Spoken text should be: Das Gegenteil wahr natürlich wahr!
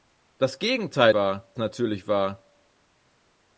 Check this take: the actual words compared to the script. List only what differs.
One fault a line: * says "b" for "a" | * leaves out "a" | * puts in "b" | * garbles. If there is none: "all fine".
all fine